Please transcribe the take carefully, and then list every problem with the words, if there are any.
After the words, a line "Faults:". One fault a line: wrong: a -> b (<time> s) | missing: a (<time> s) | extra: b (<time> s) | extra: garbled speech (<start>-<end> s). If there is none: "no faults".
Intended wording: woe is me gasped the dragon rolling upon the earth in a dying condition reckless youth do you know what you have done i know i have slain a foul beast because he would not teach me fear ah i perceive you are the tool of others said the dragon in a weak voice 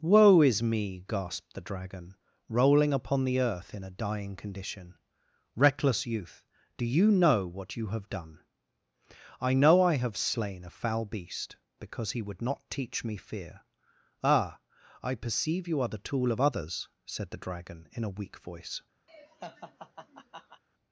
woe is me gasped the dragon rolling upon the earth in a dying condition reckless youth do you know what you have done i know i have slain a foul beast because he would not teach me fear ah i perceive you are the tool of others said the dragon in a weak voice
Faults:
no faults